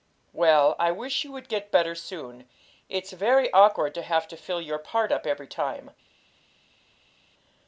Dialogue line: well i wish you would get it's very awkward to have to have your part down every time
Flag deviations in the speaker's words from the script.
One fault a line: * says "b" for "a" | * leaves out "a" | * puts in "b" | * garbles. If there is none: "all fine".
* puts in "better soon"
* says "fill" for "have"
* says "up" for "down"